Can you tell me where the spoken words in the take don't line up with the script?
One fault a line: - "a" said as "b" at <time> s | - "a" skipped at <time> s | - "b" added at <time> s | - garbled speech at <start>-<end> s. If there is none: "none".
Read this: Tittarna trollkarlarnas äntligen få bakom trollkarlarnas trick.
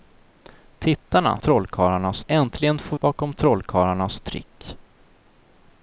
none